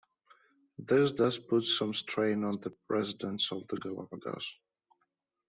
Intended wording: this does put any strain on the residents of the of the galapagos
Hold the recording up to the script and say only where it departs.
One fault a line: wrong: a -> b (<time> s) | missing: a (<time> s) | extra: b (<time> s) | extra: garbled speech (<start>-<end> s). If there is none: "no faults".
wrong: any -> some (1.6 s)
missing: of the (3.8 s)